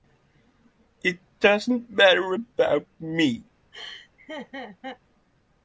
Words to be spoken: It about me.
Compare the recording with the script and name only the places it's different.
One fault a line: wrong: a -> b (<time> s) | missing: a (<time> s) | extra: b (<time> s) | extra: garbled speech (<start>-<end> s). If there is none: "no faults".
extra: doesn't matter (1.4 s)